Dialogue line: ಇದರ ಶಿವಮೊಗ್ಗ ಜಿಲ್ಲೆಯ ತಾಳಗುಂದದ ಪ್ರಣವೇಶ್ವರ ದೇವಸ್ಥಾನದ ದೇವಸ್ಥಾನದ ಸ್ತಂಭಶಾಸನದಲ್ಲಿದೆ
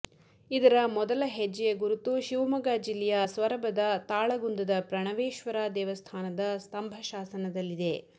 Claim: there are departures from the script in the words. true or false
true